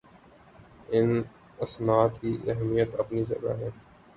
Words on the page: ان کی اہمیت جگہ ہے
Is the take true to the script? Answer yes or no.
no